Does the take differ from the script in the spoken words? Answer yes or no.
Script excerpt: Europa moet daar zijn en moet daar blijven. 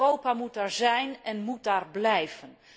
no